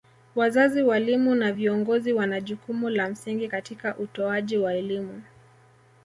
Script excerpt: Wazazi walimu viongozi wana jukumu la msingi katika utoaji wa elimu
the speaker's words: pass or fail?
fail